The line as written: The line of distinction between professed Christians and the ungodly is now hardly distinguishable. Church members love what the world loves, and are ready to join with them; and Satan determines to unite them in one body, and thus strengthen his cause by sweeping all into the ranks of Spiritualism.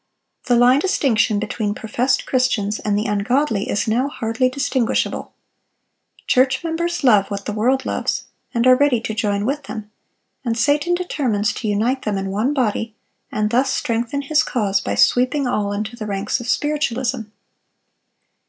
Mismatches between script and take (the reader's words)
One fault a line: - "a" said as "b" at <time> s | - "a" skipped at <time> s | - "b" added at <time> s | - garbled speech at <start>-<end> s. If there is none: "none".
- "of" skipped at 0.8 s